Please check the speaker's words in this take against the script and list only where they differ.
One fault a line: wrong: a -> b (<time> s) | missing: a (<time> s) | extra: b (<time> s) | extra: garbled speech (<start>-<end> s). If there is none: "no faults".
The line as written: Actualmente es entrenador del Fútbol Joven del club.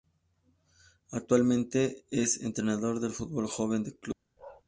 no faults